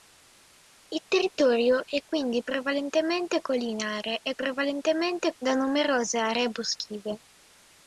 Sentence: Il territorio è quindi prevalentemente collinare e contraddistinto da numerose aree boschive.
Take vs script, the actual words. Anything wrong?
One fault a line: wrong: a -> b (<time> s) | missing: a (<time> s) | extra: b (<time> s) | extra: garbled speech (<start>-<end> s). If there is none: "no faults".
wrong: contraddistinto -> prevalentemente (4.3 s)